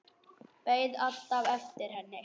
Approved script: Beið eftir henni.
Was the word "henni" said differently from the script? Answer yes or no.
no